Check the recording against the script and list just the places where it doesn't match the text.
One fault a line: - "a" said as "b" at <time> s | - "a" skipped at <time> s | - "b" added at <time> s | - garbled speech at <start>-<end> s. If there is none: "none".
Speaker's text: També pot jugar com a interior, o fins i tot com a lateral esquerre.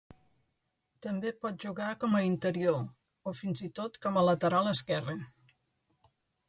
none